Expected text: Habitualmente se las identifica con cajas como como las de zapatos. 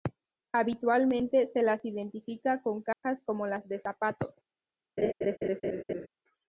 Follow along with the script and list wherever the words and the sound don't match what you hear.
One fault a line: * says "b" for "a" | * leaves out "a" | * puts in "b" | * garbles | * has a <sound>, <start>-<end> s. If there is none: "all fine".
* has a dropout, 2.9-3.0 s
* leaves out "como"
* has a laugh, 5.0-6.1 s